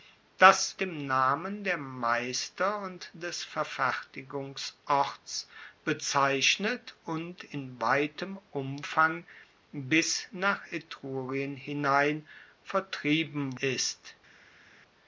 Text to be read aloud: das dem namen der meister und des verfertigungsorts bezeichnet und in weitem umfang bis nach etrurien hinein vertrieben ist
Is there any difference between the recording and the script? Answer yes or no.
no